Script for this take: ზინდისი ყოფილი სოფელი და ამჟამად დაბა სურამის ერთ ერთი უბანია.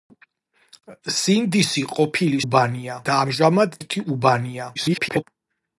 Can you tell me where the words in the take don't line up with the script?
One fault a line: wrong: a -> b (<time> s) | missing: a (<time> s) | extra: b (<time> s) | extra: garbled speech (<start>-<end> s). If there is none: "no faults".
wrong: სოფელი -> უბანია (2.5 s)
missing: დაბა სურამის ერთ (3.8 s)
extra: garbled speech (4.8-5.2 s)